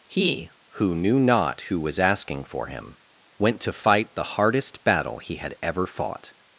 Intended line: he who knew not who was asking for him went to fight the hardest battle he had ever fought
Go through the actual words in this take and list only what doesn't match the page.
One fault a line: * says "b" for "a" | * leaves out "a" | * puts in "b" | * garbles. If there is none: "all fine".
all fine